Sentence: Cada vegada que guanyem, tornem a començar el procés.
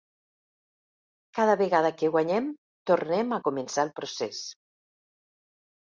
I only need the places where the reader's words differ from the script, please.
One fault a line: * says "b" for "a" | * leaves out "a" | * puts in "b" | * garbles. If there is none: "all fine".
all fine